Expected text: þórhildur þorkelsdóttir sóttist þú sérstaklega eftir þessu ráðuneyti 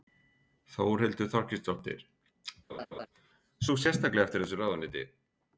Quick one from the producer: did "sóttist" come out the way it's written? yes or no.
no